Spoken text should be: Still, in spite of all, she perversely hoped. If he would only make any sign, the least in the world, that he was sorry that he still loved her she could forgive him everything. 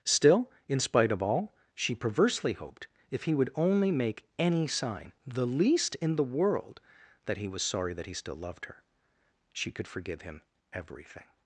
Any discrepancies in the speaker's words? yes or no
no